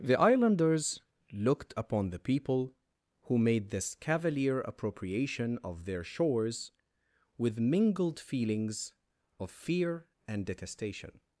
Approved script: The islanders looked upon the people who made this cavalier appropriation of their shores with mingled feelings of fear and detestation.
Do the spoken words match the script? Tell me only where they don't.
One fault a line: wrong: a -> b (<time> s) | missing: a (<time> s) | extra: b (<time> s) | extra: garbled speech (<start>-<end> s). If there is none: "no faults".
no faults